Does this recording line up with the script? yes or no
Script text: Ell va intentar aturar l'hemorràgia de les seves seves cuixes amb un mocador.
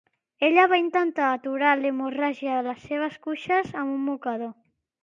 no